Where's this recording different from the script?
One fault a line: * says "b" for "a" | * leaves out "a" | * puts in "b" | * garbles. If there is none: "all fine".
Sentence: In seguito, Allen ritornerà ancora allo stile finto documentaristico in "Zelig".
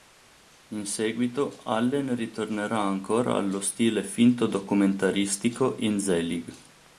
all fine